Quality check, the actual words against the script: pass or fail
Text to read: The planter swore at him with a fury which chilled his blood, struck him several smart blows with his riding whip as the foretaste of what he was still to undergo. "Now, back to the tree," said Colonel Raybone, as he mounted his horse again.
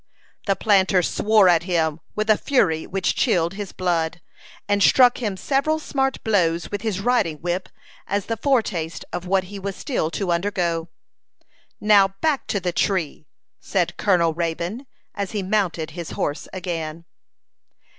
fail